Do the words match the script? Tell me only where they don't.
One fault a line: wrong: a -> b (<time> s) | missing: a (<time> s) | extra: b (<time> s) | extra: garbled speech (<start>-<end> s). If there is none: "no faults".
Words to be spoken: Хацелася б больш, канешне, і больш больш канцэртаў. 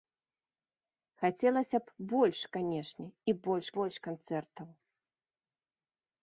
no faults